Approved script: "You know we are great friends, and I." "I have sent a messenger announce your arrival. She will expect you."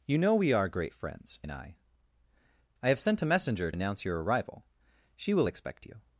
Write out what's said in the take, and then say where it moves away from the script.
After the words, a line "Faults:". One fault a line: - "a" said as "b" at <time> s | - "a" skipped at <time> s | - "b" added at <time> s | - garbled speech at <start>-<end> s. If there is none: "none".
"You know we are great friends, and I." "I have sent a messenger announce your arrival. She will expect you."
Faults:
none